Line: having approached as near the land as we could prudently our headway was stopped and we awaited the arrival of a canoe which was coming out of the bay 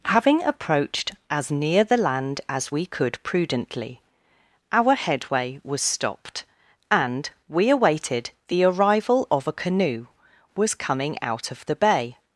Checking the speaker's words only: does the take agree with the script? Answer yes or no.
no